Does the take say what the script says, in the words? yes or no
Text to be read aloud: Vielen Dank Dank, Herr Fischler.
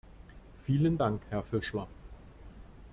no